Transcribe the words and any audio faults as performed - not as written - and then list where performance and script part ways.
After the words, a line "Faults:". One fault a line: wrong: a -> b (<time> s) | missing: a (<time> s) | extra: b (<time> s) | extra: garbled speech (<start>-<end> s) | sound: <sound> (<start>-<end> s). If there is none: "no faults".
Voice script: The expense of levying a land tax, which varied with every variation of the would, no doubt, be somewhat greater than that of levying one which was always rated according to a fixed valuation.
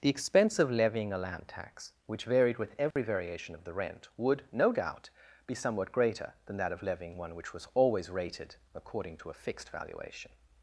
The expense of levying a land tax, which varied with every variation of the rent, would, no doubt, be somewhat greater than that of levying one which was always rated according to a fixed valuation.
Faults:
sound: dropout (2.9-3.0 s)
extra: rent (3.7 s)